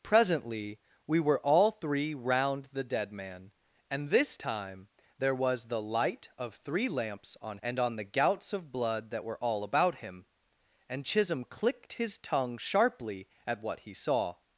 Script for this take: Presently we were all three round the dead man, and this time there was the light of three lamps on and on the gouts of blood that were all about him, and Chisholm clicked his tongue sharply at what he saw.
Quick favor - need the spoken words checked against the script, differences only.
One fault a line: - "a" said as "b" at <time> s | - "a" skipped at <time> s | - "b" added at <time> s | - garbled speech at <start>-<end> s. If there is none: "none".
none